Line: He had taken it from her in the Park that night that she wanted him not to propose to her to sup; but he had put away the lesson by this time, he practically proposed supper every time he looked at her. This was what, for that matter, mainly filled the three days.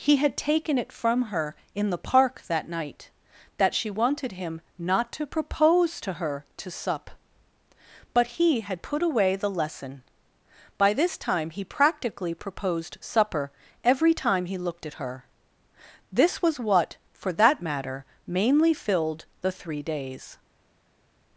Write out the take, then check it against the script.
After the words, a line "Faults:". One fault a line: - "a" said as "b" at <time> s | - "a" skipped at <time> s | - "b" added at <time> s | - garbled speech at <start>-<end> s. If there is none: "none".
He had taken it from her in the Park that night that she wanted him not to propose to her to sup; but he had put away the lesson by this time, he practically proposed supper every time he looked at her. This was what, for that matter, mainly filled the three days.
Faults:
none